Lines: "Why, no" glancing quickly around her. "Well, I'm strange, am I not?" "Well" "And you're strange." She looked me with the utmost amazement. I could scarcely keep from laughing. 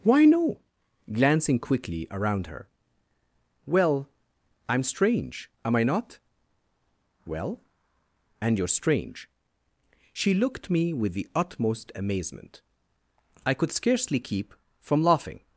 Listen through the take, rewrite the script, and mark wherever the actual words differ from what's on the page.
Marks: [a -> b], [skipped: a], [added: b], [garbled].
"Why, no" glancing quickly around her. "Well, I'm strange, am I not?" "Well" "And you're strange." She looked me with the utmost amazement. I could scarcely keep from laughing.